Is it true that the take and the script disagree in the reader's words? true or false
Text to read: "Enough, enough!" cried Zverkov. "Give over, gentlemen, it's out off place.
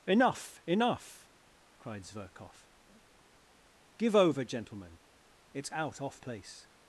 false